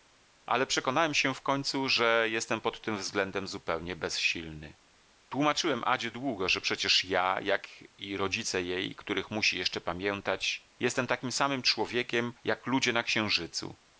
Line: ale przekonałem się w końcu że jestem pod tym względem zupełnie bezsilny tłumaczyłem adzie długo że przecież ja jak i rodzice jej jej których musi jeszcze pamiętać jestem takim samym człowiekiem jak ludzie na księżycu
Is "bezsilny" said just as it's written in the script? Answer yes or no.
yes